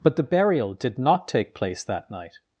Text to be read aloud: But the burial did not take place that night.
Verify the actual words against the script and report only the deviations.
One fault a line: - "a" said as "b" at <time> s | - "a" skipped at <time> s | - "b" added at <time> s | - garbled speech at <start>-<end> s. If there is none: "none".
none